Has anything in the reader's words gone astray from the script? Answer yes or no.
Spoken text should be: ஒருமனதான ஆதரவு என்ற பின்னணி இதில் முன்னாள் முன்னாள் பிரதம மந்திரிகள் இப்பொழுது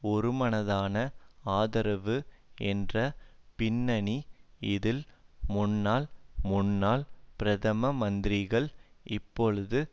no